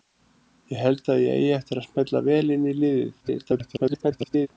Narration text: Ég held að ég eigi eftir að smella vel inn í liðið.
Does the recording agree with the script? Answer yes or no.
no